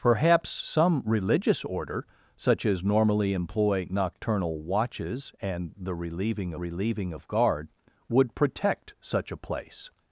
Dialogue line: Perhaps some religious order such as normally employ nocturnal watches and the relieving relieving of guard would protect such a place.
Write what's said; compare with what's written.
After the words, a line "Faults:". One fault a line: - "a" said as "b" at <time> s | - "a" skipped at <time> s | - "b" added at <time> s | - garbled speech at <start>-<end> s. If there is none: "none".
Perhaps some religious order such as normally employ nocturnal watches and the relieving relieving of guard would protect such a place.
Faults:
none